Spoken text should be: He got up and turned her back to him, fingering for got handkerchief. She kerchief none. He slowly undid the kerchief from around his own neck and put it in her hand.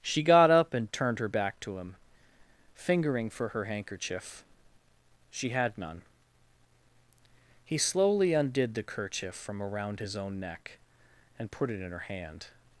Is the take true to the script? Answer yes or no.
no